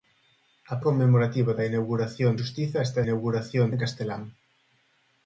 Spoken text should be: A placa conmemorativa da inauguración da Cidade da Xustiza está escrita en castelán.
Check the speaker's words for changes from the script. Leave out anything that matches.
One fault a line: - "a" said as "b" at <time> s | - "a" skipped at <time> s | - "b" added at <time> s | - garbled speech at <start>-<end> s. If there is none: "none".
- "placa" skipped at 0.8 s
- "da Cidade da" skipped at 2.3 s
- "escrita" said as "inauguración" at 3.1 s